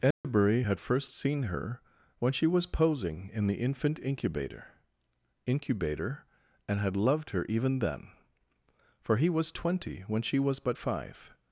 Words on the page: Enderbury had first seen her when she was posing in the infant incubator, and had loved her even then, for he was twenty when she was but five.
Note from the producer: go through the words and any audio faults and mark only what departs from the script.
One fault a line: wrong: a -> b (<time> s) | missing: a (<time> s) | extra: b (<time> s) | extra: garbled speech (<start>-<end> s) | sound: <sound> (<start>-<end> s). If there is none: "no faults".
sound: dropout (0.1-0.2 s)
extra: incubator (5.5 s)